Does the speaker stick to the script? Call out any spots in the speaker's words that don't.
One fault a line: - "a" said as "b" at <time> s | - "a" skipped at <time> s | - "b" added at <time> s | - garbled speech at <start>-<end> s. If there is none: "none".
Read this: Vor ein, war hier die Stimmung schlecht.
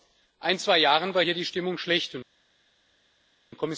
- "zwei Jahren" added at 0.6 s